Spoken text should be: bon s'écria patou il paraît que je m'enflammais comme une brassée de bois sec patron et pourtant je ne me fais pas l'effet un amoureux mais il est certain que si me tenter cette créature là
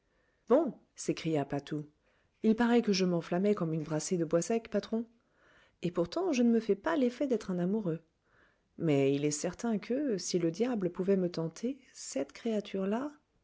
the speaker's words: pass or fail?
fail